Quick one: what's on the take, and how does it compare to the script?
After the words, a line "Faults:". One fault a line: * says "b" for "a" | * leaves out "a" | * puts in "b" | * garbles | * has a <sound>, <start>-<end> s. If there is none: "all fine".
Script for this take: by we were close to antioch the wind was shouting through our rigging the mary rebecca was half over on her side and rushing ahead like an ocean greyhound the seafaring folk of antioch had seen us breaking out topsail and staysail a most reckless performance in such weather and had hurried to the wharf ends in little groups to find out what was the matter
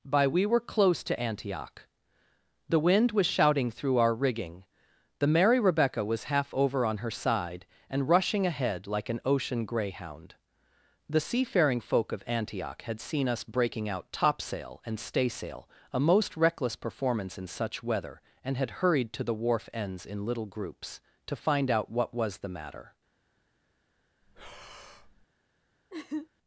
by we were close to antioch the wind was shouting through our rigging the mary rebecca was half over on her side and rushing ahead like an ocean greyhound the seafaring folk of antioch had seen us breaking out topsail and staysail a most reckless performance in such weather and had hurried to the wharf ends in little groups to find out what was the matter
Faults:
* has a breath, 24.2-25.3 s
* has a laugh, 25.9-26.3 s